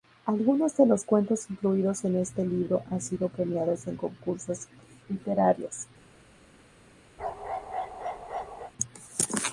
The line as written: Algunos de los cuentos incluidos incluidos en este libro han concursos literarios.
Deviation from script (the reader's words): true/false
true